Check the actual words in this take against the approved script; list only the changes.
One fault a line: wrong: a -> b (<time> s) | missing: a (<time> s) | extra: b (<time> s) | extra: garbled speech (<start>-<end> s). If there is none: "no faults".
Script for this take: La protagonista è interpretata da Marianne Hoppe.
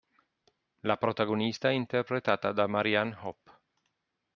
no faults